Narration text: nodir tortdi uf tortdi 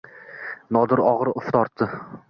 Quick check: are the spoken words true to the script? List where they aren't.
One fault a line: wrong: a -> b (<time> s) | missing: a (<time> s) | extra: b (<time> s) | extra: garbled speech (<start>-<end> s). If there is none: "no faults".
wrong: tortdi -> og‘ir (1.1 s)